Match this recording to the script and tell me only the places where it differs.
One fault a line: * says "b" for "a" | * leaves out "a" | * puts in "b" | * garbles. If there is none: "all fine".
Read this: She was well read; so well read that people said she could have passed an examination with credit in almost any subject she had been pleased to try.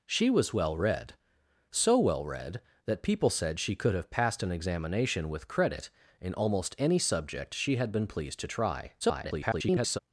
* garbles